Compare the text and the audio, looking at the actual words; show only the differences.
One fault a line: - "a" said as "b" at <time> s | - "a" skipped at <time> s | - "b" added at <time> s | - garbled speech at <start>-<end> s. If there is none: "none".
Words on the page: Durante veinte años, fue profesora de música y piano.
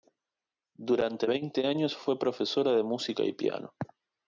none